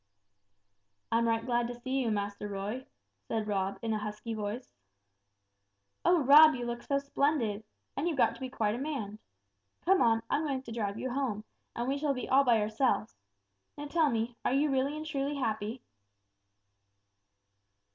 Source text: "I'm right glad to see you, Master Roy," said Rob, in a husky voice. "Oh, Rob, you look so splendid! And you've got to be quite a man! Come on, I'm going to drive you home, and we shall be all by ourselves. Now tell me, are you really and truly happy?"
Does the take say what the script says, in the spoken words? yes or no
yes